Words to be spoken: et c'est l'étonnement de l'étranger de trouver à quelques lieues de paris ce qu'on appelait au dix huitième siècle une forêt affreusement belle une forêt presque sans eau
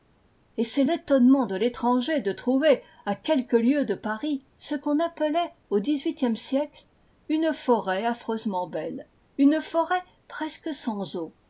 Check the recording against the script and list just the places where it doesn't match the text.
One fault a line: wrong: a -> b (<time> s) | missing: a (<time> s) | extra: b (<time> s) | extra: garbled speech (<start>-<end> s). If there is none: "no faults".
no faults